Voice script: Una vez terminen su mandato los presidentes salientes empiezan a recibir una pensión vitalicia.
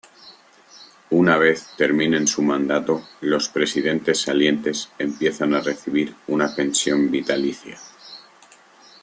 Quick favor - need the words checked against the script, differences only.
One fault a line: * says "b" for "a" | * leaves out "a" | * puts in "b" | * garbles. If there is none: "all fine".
all fine